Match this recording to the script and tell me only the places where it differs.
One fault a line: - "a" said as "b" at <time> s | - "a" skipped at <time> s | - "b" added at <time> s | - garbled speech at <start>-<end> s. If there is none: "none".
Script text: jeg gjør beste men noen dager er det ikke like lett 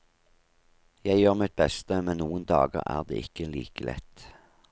- "mitt" added at 1.4 s